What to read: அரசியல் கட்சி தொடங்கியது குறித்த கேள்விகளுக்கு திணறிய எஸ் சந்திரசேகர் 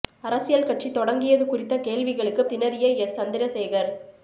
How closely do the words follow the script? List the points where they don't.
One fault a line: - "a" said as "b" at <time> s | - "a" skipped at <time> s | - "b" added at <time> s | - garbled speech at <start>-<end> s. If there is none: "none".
none